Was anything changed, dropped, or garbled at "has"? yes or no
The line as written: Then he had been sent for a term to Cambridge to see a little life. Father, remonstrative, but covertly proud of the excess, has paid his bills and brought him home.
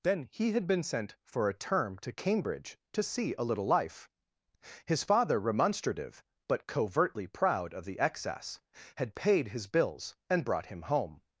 yes